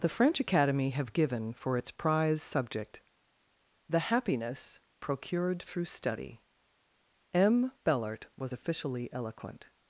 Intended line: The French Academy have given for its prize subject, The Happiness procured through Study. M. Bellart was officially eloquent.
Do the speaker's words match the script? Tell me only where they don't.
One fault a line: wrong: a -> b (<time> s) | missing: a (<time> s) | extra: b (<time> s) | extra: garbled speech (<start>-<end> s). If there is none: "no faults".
no faults